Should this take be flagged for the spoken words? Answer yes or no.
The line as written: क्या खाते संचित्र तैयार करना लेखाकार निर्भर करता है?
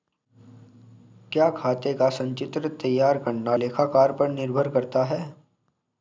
yes